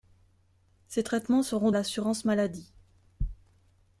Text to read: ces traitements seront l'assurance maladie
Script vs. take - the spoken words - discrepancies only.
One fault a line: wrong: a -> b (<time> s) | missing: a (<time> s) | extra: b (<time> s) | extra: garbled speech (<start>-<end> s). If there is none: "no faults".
no faults